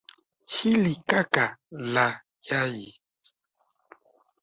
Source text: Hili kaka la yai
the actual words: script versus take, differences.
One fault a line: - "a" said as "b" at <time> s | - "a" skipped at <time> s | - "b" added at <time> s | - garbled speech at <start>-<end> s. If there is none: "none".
none